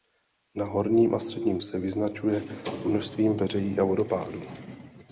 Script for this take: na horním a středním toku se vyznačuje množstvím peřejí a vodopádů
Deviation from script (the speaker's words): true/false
true